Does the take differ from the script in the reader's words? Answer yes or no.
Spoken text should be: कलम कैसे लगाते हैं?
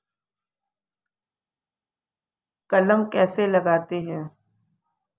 no